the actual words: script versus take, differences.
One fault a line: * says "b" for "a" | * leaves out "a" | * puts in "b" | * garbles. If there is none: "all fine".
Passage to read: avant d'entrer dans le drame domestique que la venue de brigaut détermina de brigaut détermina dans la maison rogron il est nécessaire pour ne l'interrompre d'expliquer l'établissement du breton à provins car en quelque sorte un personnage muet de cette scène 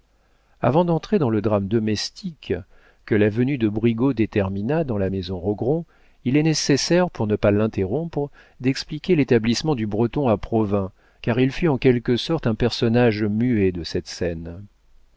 * leaves out "de brigaut détermina"
* puts in "pas"
* puts in "il fut"